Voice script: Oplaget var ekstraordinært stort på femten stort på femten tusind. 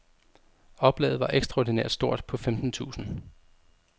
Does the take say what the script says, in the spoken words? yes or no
no